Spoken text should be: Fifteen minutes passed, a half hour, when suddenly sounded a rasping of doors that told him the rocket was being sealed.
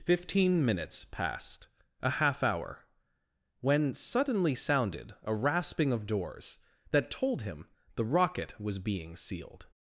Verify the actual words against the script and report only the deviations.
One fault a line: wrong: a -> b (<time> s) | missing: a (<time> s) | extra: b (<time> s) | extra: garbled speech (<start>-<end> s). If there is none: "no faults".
no faults